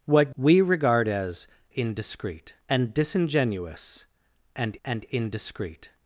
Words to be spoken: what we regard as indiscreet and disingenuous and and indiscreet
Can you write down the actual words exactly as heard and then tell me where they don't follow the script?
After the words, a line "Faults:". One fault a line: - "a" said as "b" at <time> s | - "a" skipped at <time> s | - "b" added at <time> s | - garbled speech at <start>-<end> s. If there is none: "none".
what we regard as indiscreet and disingenuous and and indiscreet
Faults:
none